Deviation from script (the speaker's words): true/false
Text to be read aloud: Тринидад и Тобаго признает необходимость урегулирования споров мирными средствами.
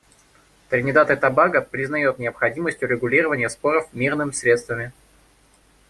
false